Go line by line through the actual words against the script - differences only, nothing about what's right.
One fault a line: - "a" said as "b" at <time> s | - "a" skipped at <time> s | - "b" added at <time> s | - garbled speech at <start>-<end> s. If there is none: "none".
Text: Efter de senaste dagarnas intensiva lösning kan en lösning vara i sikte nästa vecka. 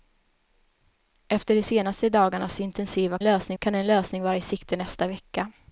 none